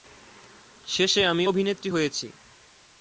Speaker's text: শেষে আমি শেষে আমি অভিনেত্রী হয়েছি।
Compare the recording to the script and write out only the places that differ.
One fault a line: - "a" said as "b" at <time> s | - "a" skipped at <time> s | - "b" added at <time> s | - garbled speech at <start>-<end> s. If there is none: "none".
- "শেষে আমি" skipped at 1.4 s